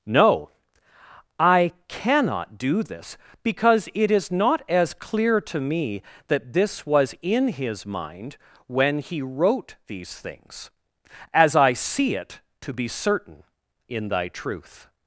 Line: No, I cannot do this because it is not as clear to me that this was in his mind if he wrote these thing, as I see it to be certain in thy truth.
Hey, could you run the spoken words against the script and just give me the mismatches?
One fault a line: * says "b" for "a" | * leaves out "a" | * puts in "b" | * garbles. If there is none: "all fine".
* says "when" for "if"
* says "things" for "thing"